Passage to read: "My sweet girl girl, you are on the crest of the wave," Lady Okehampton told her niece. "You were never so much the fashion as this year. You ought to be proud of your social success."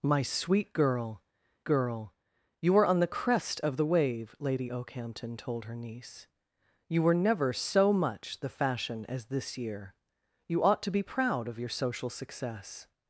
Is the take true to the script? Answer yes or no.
yes